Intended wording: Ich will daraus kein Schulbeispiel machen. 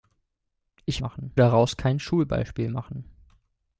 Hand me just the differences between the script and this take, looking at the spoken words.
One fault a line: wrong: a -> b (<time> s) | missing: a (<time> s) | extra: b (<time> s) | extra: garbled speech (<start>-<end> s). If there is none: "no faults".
wrong: will -> machen (1.0 s)